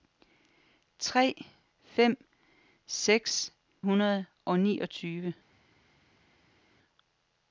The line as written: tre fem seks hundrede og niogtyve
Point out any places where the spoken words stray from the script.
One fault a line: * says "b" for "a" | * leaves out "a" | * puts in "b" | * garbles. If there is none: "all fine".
all fine